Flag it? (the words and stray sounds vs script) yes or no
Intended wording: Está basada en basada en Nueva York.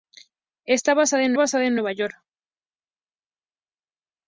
no